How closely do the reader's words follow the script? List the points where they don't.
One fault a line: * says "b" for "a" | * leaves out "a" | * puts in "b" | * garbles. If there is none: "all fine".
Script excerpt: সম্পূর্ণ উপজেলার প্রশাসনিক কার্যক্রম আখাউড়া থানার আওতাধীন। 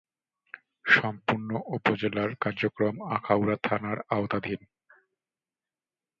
* leaves out "প্রশাসনিক"